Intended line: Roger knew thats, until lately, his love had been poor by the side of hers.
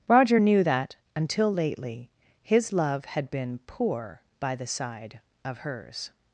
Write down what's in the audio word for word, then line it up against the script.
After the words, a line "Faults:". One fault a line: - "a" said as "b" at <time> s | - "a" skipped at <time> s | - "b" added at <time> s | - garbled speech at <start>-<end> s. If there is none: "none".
Roger knew that, until lately, his love had been poor by the side of hers.
Faults:
- "thats" said as "that" at 0.6 s